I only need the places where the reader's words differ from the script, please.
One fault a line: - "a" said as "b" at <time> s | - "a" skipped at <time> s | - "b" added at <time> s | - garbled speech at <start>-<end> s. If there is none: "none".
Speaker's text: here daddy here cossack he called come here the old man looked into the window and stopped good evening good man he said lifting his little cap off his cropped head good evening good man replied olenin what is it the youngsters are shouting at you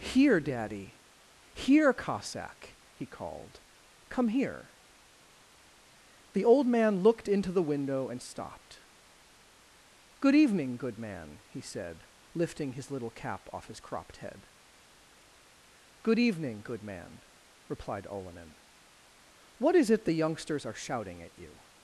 none